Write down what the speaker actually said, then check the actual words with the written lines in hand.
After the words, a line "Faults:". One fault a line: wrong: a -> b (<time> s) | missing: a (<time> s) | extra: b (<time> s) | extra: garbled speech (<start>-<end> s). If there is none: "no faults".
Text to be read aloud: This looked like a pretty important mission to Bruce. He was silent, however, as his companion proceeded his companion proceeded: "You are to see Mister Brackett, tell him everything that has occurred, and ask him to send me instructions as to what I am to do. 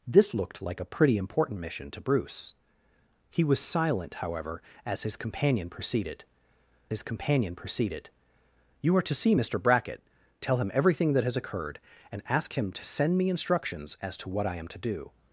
This looked like a pretty important mission to Bruce. He was silent, however, as his companion proceeded his companion proceeded: "You are to see Mister Brackett, tell him everything that has occurred, and ask him to send me instructions as to what I am to do.
Faults:
no faults